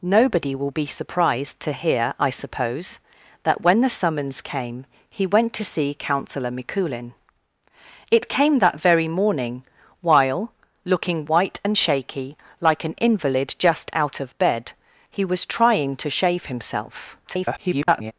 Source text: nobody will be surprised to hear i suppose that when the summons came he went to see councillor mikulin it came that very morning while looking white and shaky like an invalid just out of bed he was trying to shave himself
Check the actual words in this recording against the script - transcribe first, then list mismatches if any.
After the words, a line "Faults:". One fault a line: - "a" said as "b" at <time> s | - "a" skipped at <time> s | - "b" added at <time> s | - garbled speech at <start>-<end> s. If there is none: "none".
nobody will be surprised to hear i suppose that when the summons came he went to see councillor mikulin it came that very morning while looking white and shaky like an invalid just out of bed he was trying to shave himself [garbled]
Faults:
- garbled speech at 17.2-18.1 s